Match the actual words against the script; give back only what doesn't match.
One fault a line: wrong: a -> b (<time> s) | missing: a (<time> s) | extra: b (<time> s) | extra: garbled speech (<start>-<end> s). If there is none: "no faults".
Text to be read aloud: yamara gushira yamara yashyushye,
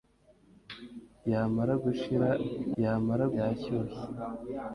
no faults